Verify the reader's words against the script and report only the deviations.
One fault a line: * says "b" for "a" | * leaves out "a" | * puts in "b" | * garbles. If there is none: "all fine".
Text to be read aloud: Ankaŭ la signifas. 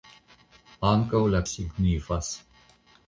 all fine